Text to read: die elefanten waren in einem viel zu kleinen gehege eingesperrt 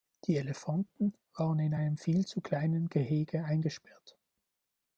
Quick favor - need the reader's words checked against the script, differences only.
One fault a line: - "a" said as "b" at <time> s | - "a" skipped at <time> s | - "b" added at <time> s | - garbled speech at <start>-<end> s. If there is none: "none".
none